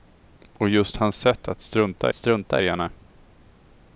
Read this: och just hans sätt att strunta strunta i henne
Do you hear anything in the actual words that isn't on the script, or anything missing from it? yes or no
no